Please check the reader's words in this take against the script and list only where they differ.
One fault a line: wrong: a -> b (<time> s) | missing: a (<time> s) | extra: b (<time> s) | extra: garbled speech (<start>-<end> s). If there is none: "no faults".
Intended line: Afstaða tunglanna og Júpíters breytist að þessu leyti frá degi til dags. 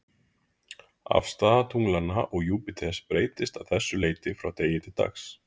no faults